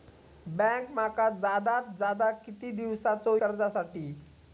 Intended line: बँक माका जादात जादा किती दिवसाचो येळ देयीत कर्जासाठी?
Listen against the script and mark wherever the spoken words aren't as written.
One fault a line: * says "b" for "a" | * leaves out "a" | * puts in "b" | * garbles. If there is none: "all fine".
* leaves out "येळ देयीत"